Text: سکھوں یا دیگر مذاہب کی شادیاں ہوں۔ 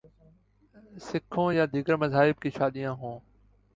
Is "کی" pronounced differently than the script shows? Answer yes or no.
no